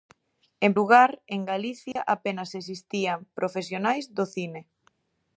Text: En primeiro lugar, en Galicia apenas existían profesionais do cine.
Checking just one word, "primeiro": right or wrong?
wrong